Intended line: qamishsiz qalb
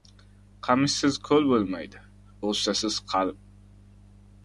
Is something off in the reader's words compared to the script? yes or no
yes